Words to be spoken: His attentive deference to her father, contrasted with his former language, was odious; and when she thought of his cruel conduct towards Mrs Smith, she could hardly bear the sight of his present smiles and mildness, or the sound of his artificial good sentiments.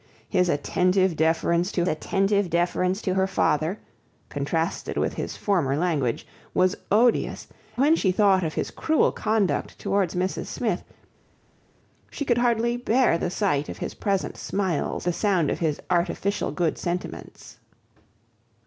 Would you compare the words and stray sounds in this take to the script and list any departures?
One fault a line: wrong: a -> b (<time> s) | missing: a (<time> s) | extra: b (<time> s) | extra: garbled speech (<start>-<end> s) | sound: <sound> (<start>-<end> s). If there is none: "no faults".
extra: attentive deference to (1.9 s)
missing: and (7.5 s)
missing: and mildness or (15.0 s)